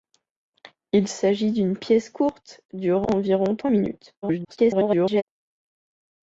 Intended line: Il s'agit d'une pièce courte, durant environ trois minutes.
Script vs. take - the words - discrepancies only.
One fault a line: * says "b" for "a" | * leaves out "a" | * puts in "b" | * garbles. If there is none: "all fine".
* garbles